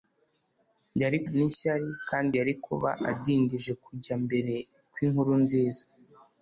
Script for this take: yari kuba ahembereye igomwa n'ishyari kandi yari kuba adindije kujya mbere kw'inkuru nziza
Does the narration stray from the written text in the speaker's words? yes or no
yes